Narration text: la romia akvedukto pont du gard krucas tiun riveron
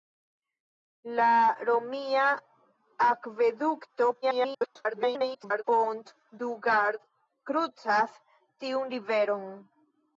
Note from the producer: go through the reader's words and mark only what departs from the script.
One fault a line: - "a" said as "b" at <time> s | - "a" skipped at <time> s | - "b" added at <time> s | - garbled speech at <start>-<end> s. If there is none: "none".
- garbled speech at 4.2-5.6 s